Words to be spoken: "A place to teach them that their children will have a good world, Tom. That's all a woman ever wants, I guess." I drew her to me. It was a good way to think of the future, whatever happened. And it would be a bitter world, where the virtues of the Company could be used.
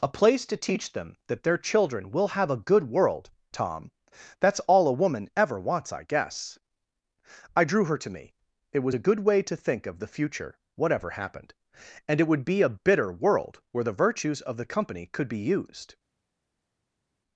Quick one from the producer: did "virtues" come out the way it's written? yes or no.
yes